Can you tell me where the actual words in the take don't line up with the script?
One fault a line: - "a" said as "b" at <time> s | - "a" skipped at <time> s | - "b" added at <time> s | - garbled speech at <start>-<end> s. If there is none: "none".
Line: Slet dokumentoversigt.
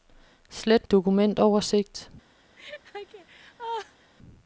none